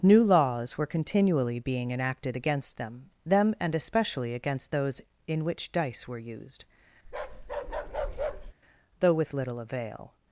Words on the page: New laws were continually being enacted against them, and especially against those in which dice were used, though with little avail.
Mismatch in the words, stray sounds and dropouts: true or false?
true